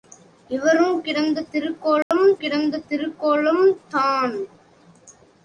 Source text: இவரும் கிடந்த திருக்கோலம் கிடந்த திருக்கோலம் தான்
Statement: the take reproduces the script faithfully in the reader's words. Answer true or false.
true